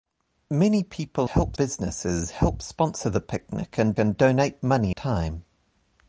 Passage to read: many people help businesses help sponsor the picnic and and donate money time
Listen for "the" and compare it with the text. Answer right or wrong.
right